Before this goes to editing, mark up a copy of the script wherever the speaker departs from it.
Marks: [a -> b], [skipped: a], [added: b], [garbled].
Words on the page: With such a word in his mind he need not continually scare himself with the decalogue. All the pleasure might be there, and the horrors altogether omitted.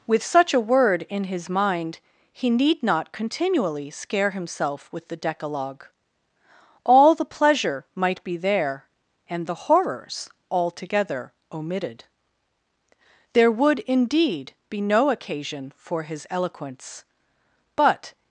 With such a word in his mind he need not continually scare himself with the decalogue. All the pleasure might be there, and the horrors altogether omitted. [added: There would indeed be no occasion for his eloquence but]